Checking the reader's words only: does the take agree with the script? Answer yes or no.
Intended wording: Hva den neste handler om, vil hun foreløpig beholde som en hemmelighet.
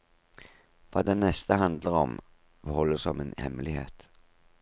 no